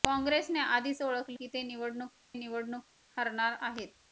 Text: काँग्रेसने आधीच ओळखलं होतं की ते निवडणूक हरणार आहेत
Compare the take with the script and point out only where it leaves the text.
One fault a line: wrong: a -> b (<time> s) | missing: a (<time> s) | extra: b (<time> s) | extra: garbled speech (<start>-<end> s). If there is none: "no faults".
missing: होतं (1.4 s)
extra: निवडणूक (2.3 s)